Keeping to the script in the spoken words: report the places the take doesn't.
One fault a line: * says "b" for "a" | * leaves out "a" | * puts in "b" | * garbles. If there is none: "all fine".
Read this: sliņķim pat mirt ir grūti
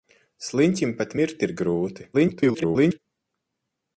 * garbles